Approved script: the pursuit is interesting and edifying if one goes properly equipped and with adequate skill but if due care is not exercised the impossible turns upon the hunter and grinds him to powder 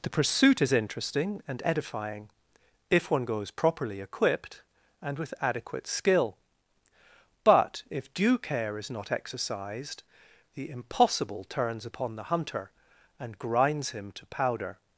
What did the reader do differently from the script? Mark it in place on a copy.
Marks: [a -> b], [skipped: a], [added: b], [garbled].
the pursuit is interesting and edifying if one goes properly equipped and with adequate skill but if due care is not exercised the impossible turns upon the hunter and grinds him to powder